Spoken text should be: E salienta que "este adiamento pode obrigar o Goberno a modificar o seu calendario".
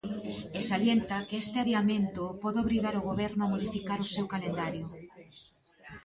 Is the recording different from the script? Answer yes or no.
no